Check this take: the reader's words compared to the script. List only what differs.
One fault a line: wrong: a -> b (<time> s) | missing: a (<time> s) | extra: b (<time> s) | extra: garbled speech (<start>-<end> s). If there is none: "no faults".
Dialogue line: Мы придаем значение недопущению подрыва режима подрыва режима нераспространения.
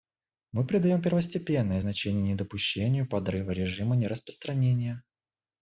extra: первостепенное (1.0 s)
missing: подрыва режима (4.0 s)